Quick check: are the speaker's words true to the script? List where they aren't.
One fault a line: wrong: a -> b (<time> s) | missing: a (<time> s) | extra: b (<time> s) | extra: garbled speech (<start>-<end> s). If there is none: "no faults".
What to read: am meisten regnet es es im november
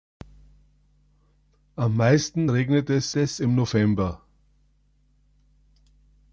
no faults